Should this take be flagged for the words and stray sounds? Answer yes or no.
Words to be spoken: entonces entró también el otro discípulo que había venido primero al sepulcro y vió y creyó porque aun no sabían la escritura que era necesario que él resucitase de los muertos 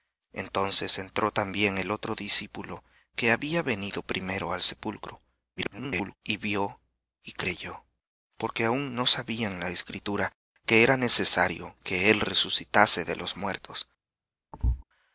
yes